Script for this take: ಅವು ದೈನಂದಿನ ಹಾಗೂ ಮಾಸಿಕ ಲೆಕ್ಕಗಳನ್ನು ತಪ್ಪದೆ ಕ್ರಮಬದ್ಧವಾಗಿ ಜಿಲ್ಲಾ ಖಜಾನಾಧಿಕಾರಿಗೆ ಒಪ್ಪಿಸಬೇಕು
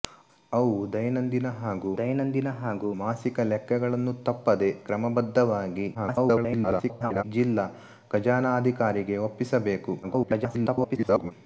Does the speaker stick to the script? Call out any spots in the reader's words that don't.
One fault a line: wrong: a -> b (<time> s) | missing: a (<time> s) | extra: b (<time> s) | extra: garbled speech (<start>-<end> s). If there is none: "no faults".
extra: ದೈನಂದಿನ ಹಾಗೂ (2.0 s)
extra: garbled speech (5.9-7.2 s)
extra: garbled speech (10.0-11.3 s)